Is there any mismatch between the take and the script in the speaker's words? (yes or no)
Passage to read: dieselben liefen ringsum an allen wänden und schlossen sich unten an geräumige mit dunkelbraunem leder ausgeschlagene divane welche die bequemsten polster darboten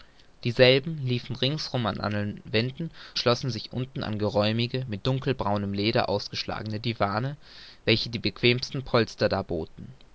yes